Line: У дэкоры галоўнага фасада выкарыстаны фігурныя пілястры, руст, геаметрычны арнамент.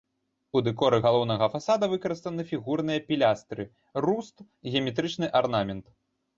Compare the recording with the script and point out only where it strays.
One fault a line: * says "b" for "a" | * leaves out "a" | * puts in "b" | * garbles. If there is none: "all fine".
all fine